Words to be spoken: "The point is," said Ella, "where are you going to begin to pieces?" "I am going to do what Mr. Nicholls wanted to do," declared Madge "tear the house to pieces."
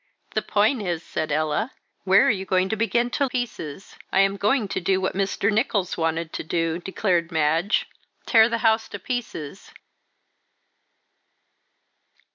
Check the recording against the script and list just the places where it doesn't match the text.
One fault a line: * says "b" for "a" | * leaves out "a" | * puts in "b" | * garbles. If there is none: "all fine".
all fine